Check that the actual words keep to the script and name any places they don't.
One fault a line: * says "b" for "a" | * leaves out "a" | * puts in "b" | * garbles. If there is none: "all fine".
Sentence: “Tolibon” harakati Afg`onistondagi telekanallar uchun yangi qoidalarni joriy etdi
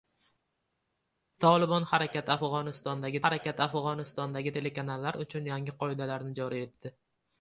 * puts in "harakati Afg`onistondagi"